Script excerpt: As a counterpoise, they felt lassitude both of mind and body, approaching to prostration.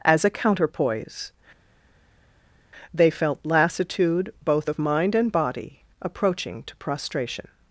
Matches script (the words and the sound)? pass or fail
pass